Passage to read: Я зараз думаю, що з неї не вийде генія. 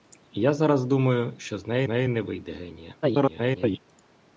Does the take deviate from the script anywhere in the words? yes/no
yes